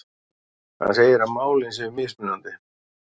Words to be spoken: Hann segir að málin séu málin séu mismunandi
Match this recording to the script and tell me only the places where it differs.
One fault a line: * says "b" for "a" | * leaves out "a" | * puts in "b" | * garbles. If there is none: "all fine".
* leaves out "málin séu"